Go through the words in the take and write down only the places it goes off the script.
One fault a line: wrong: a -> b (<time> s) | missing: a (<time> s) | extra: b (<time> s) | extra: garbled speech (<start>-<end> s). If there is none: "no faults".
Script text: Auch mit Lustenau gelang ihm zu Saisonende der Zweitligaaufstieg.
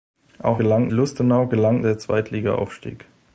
wrong: mit -> gelang (0.5 s)
missing: ihm zu Saisonende (1.8 s)